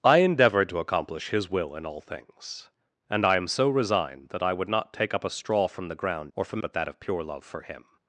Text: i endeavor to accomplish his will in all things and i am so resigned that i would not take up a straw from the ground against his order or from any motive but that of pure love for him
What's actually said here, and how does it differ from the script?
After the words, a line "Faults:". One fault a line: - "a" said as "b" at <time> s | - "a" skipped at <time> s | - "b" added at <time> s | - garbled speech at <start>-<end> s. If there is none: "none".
i endeavor to accomplish his will in all things and i am so resigned that i would not take up a straw from the ground or from but that of pure love for him
Faults:
- "against his order" skipped at 6.3 s
- "any motive" skipped at 6.6 s